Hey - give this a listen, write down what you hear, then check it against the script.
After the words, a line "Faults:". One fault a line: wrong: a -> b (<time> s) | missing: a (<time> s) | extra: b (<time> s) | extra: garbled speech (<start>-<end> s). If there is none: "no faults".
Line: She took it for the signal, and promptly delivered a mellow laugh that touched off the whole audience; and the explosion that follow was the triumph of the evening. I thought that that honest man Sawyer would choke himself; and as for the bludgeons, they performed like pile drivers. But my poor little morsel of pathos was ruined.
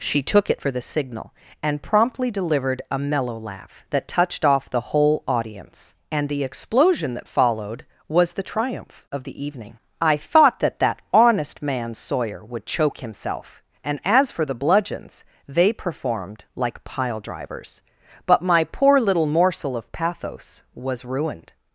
She took it for the signal, and promptly delivered a mellow laugh that touched off the whole audience; and the explosion that followed was the triumph of the evening. I thought that that honest man Sawyer would choke himself; and as for the bludgeons, they performed like pile drivers. But my poor little morsel of pathos was ruined.
Faults:
wrong: follow -> followed (7.3 s)